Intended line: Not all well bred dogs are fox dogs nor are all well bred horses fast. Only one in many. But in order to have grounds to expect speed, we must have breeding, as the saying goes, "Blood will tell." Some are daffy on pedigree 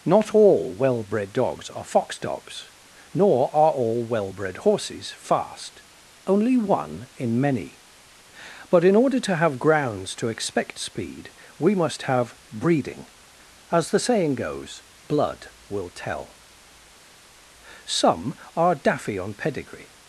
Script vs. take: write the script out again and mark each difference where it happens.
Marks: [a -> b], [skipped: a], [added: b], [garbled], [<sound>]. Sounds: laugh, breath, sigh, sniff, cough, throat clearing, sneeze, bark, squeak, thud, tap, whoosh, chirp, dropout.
Not all well bred dogs are fox dogs nor are all well bred horses fast. Only one in many. But in order to have grounds to expect speed, we must have breeding, as the saying goes, "Blood will tell." Some are daffy on pedigree